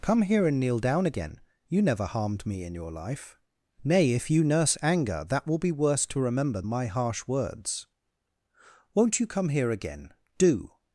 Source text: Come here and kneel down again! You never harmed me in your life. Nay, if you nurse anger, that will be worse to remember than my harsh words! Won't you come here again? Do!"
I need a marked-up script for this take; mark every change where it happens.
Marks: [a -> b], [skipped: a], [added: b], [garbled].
Come here and kneel down again! You never harmed me in your life. Nay, if you nurse anger, that will be worse to remember [skipped: than] my harsh words! Won't you come here again? Do!"